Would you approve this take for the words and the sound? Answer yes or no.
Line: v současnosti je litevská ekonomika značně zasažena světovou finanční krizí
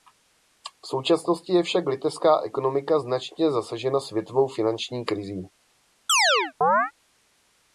no